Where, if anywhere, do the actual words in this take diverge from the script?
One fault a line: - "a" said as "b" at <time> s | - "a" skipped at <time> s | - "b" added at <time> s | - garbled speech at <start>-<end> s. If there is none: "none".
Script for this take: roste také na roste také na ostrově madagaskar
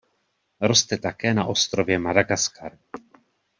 - "roste také na" skipped at 1.5 s